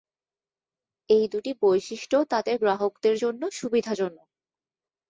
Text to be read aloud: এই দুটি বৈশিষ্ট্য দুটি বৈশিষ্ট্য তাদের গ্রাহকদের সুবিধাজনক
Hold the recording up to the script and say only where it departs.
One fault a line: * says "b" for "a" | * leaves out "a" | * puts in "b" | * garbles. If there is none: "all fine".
* leaves out "দুটি বৈশিষ্ট্য"
* puts in "জন্য"